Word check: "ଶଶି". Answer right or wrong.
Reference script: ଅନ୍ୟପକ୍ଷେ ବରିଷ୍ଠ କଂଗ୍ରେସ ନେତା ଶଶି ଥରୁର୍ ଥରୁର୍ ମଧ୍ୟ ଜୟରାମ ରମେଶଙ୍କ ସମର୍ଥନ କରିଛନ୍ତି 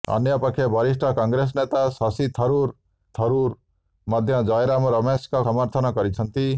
right